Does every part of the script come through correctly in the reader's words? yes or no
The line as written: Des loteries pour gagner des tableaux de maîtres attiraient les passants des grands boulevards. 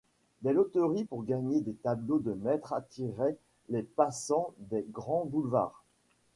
yes